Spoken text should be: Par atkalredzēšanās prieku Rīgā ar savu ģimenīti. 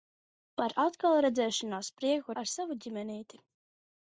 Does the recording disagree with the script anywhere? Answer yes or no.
yes